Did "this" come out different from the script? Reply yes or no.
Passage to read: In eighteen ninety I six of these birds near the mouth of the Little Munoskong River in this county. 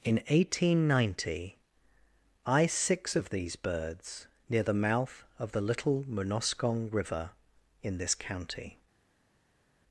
no